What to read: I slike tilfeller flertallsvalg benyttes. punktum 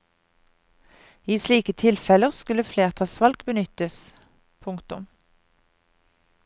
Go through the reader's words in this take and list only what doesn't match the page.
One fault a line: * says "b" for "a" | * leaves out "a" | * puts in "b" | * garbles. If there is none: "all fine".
* puts in "skulle"